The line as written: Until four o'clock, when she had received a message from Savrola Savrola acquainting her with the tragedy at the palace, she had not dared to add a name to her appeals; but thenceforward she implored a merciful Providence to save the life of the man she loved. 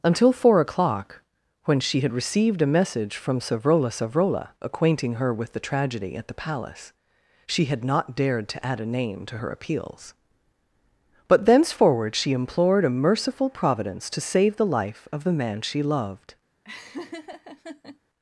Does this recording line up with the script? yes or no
yes